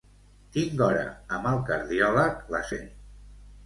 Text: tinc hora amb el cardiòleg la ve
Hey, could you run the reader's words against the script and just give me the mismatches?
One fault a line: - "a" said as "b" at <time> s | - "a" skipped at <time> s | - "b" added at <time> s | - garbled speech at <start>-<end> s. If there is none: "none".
none